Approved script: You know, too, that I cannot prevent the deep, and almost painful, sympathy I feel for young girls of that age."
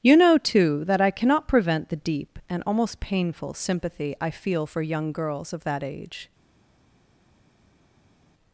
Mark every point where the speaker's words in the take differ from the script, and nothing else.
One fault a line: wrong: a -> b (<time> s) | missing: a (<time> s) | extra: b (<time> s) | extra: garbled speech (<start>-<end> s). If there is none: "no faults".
no faults